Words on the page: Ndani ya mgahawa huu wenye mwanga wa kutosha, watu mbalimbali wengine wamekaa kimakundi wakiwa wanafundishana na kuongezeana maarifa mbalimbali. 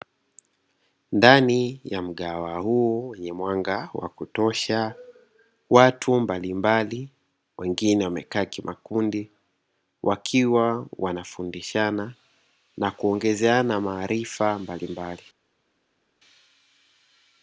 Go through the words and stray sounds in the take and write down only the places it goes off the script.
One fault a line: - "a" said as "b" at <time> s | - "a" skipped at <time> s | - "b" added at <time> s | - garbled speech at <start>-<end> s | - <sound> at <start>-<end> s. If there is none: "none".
none